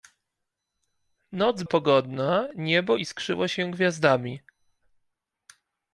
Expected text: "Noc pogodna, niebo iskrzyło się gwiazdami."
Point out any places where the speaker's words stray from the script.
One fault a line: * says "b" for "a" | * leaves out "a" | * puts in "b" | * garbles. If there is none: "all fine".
all fine